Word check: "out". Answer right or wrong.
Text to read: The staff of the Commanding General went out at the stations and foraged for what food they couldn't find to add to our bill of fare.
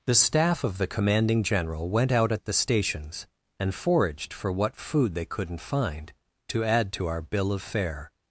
right